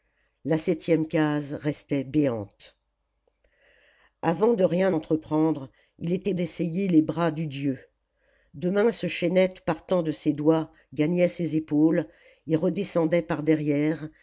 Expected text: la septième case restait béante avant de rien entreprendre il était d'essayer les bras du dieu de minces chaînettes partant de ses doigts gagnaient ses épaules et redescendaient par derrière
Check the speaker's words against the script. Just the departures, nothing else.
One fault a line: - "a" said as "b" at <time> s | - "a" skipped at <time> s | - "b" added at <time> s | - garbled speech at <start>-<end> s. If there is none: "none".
none